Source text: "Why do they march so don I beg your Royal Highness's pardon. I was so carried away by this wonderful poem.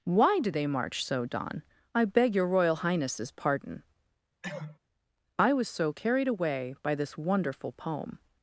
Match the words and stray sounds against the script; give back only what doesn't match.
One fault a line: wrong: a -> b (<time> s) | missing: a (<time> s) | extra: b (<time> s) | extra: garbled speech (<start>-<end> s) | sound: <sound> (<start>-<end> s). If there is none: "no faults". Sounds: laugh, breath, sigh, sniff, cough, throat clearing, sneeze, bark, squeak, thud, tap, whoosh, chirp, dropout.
sound: cough (4.4-4.8 s)